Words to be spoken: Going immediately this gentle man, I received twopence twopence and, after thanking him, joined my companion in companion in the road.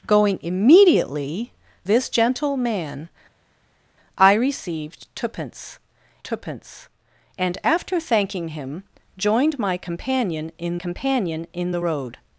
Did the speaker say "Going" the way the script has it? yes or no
yes